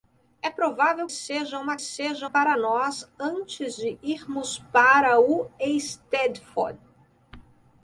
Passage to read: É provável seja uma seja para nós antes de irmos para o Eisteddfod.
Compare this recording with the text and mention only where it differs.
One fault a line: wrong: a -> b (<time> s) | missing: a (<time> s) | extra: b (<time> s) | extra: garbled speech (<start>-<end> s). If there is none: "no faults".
no faults